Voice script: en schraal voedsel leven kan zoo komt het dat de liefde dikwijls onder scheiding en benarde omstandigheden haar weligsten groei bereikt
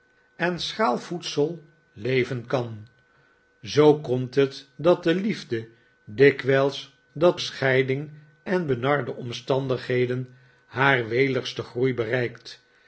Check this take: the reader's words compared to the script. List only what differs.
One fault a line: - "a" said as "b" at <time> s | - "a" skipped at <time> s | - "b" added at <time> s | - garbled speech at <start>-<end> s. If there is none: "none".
- "onder" said as "dat" at 7.1 s